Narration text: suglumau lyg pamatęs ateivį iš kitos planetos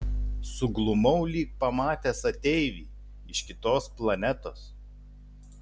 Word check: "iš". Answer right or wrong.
right